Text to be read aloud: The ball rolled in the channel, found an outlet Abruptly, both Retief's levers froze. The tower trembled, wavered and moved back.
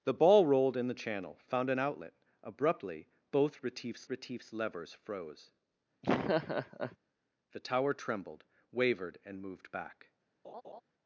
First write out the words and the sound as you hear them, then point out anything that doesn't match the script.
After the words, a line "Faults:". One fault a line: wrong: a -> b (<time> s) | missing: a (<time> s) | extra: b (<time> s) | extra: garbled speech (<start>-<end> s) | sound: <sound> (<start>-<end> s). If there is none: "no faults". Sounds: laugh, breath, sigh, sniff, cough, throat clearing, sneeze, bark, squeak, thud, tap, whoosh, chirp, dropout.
The ball rolled in the channel, found an outlet Abruptly, both Retief's Retief's levers froze. The tower trembled, wavered and moved back.
Faults:
extra: Retief's (4.1 s)
sound: laugh (6.0-7.0 s)
sound: laugh (10.4-10.8 s)